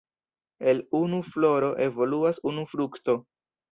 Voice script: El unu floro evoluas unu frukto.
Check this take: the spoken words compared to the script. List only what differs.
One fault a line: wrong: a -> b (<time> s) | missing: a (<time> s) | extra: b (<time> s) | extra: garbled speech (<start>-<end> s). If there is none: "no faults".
no faults